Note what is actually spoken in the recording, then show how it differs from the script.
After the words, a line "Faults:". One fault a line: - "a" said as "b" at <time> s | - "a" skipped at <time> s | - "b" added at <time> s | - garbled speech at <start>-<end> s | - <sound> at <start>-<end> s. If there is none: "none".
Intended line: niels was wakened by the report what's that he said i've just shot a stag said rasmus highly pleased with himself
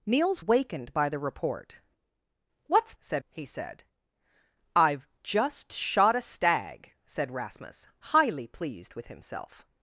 niels wakened by the report what's said he said i've just shot a stag said rasmus highly pleased with himself
Faults:
- "was" skipped at 0.4 s
- "that" said as "said" at 3.0 s